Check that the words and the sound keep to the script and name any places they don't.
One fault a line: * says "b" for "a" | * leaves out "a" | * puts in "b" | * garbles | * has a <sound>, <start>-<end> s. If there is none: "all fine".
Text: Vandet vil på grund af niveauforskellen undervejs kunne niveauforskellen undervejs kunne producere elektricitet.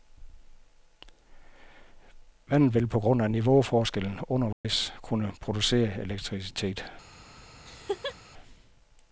* has a dropout, 4.5-4.6 s
* leaves out "niveauforskellen undervejs kunne"
* has a laugh, 7.6-8.2 s